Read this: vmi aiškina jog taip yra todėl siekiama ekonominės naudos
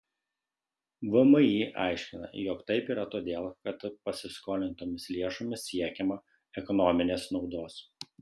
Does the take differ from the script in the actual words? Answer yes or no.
yes